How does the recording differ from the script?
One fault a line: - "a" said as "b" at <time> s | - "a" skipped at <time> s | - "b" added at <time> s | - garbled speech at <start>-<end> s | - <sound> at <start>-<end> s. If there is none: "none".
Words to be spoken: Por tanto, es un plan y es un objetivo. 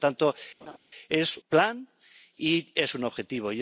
- laugh at 0.6-0.8 s
- "un" skipped at 1.4 s